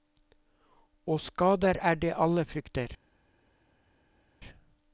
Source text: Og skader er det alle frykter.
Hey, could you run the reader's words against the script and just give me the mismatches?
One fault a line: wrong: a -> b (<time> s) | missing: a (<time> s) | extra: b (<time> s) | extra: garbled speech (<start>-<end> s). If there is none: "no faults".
no faults